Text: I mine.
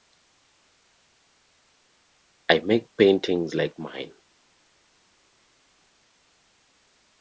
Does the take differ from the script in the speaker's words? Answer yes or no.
yes